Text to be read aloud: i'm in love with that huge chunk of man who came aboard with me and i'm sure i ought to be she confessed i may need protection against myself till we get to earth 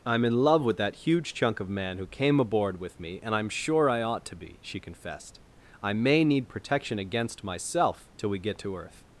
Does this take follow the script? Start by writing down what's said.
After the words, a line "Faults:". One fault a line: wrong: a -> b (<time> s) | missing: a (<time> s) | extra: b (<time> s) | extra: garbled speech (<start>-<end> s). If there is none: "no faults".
i'm in love with that huge chunk of man who came aboard with me and i'm sure i ought to be she confessed i may need protection against myself till we get to earth
Faults:
no faults